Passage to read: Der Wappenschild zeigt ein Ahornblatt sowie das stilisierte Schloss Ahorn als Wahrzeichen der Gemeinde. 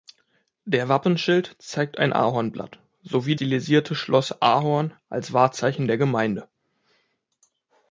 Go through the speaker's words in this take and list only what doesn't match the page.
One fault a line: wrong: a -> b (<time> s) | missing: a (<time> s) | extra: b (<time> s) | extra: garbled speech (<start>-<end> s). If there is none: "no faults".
missing: das (3.4 s)